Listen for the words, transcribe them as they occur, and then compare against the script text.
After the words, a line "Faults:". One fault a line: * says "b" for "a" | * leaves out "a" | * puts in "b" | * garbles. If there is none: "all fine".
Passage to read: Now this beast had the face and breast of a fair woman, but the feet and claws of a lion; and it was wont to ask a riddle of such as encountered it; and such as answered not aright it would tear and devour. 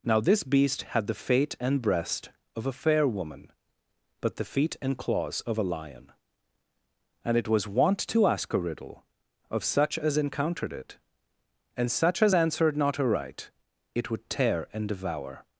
Now this beast had the fate and breast of a fair woman, but the feet and claws of a lion; and it was wont to ask a riddle of such as encountered it; and such as answered not aright it would tear and devour.
Faults:
* says "fate" for "face"